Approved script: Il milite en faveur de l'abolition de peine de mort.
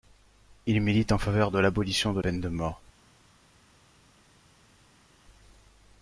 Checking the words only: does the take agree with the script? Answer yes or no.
yes